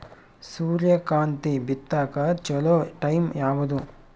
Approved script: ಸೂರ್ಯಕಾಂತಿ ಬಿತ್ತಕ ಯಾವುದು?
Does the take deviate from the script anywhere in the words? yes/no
yes